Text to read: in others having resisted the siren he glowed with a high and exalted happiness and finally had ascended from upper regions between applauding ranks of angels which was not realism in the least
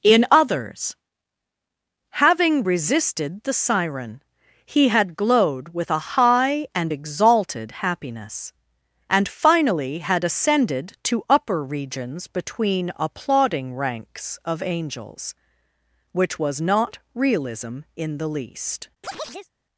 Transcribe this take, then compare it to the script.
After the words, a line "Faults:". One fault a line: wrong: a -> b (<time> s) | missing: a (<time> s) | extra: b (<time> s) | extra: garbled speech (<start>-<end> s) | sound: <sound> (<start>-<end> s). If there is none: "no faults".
in others having resisted the siren he had glowed with a high and exalted happiness and finally had ascended to upper regions between applauding ranks of angels which was not realism in the least
Faults:
extra: had (4.9 s)
wrong: from -> to (11.0 s)
sound: chirp (19.0-19.5 s)